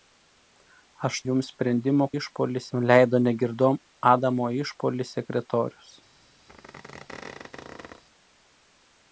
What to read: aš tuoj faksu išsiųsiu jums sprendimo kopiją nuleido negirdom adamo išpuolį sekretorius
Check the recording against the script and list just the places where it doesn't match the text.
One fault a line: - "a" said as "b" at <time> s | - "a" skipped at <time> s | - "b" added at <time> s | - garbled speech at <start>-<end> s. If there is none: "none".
- "tuoj faksu išsiųsiu" skipped at 1.2 s
- "kopiją" said as "išpuolį" at 2.2 s